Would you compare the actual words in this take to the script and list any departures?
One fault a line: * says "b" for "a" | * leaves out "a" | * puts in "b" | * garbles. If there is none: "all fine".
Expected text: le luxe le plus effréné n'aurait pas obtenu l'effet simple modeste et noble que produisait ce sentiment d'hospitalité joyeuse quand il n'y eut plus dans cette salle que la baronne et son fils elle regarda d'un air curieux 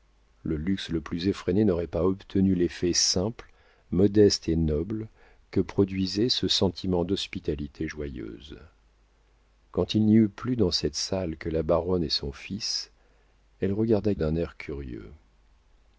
all fine